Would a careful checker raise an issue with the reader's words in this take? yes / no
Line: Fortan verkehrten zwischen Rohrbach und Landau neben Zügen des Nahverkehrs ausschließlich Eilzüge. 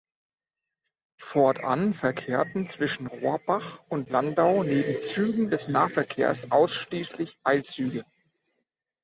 no